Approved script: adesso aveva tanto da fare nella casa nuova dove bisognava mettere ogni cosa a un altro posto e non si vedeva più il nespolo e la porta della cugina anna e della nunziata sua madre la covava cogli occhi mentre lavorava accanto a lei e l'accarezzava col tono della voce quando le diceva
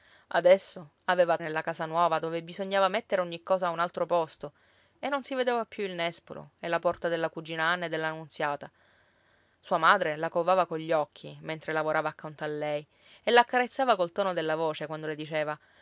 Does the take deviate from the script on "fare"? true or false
true